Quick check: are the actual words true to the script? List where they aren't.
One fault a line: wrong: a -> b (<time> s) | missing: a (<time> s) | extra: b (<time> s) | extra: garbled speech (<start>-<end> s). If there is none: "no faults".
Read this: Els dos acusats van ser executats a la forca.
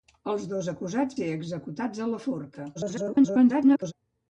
missing: van (1.2 s)
extra: garbled speech (2.7-3.9 s)